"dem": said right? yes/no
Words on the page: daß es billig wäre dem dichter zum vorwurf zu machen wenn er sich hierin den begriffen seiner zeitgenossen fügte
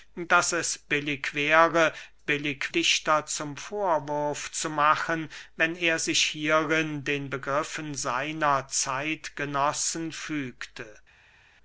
no